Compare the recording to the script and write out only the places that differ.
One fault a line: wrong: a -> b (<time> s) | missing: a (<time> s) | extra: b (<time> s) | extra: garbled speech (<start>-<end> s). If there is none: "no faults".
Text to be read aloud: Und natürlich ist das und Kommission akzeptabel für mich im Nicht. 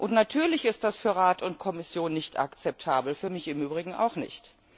extra: für Rat (1.0 s)
extra: nicht (2.1 s)
extra: Übrigen auch (3.6 s)